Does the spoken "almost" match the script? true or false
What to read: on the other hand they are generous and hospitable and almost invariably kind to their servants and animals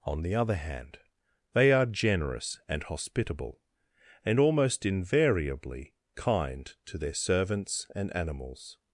true